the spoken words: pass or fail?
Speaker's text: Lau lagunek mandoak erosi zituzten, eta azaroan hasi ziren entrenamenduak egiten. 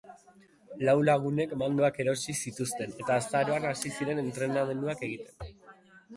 pass